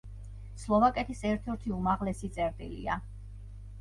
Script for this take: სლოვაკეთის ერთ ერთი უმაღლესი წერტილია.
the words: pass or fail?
pass